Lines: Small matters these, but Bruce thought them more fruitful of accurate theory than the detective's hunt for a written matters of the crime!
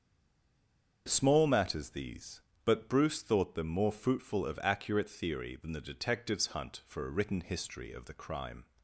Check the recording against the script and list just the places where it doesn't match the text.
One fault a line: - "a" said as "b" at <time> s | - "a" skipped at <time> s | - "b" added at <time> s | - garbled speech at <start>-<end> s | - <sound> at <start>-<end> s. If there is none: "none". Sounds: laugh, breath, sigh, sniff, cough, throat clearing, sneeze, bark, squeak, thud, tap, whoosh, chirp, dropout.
- "matters" said as "history" at 7.4 s